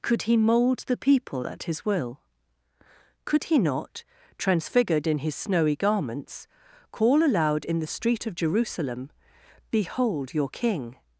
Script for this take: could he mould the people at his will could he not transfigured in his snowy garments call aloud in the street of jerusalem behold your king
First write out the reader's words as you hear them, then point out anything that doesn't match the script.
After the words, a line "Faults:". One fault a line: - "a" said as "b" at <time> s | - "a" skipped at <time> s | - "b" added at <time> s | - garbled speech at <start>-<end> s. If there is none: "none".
could he mould the people at his will could he not transfigured in his snowy garments call aloud in the street of jerusalem behold your king
Faults:
none